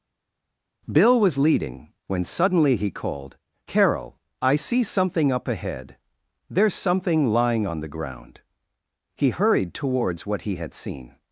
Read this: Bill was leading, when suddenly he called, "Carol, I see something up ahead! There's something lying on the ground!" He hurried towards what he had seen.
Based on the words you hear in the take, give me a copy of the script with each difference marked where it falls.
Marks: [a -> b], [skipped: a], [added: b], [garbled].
Bill was leading, when suddenly he called, "Carol, I see something up ahead! There's something lying on the ground!" He hurried towards what he had seen.